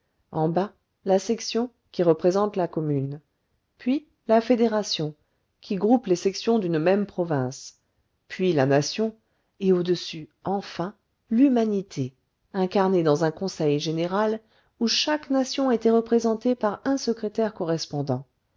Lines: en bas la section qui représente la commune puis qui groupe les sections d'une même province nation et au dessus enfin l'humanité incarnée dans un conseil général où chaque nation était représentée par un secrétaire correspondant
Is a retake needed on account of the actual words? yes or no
yes